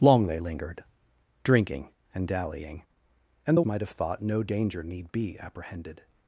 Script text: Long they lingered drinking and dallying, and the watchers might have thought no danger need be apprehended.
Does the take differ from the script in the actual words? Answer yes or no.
yes